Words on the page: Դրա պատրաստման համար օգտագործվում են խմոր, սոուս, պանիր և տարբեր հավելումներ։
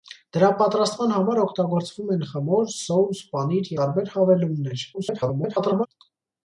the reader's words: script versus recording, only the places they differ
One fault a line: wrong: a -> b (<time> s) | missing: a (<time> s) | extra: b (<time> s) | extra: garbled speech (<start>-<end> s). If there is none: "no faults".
missing: և (3.7 s)
extra: garbled speech (4.9-5.9 s)